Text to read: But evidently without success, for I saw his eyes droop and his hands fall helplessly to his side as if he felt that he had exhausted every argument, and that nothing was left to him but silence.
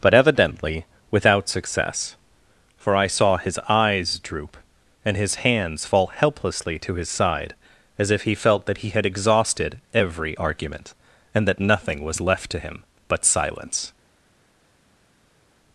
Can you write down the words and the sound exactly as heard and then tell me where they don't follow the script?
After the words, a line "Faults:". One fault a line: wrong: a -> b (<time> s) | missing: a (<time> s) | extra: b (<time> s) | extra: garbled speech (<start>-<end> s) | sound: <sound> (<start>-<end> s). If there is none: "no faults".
But evidently without success, for I saw his eyes droop and his hands fall helplessly to his side as if he felt that he had exhausted every argument, and that nothing was left to him but silence.
Faults:
no faults